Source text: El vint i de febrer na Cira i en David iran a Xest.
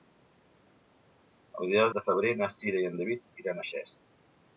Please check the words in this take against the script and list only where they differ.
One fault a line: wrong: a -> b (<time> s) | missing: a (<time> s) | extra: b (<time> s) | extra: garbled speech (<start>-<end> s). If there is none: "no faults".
no faults